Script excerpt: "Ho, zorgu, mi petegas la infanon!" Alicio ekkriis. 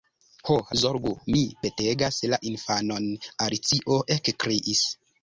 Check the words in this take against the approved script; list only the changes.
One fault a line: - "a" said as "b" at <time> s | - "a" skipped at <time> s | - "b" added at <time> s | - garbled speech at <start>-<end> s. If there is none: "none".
none